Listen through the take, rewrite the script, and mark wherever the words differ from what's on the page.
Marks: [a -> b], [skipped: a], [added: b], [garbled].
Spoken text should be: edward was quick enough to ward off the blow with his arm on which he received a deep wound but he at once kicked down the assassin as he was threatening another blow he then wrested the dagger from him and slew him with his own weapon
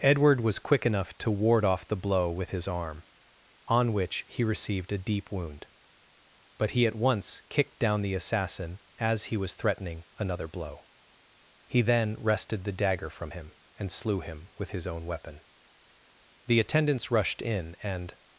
edward was quick enough to ward off the blow with his arm on which he received a deep wound but he at once kicked down the assassin as he was threatening another blow he then wrested the dagger from him and slew him with his own weapon [added: the attendants rushed in and]